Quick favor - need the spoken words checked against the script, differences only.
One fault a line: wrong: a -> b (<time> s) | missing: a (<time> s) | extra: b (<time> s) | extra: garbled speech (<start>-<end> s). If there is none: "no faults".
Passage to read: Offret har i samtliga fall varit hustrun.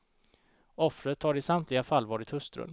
no faults